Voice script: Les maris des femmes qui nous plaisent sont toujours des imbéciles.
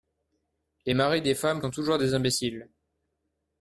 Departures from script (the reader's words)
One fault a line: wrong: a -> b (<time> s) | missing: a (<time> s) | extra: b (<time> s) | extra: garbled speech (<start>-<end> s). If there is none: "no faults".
missing: qui nous plaisent (1.6 s)